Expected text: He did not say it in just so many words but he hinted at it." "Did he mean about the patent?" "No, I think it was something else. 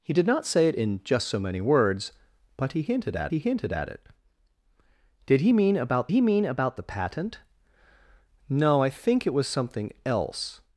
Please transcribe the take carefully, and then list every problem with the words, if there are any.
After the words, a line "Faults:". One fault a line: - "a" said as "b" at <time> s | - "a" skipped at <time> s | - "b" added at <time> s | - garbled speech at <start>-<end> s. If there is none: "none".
He did not say it in just so many words but he hinted at he hinted at it." "Did he mean about he mean about the patent?" "No, I think it was something else.
Faults:
- "he hinted at" added at 3.3 s
- "he mean about" added at 6.1 s